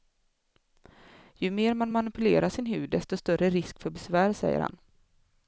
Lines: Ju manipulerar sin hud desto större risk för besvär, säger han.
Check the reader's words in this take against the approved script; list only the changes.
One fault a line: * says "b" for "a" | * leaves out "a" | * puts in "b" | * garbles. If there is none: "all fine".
* puts in "mer man"